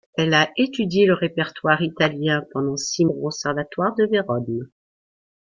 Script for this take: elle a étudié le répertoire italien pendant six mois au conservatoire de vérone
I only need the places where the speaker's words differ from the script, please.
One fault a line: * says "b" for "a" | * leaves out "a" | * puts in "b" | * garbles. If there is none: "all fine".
* leaves out "mois"